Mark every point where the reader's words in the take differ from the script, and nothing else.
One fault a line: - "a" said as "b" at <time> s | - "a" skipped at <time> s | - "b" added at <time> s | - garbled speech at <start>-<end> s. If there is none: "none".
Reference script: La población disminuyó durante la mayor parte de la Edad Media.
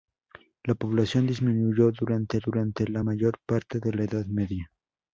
- "durante" added at 2.4 s